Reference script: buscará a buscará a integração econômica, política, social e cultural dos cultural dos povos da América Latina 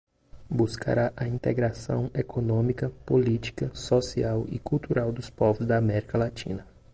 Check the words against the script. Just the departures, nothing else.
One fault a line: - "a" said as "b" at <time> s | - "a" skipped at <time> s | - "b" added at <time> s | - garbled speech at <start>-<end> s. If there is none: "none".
- "buscará a" skipped at 1.3 s
- "cultural dos" skipped at 5.3 s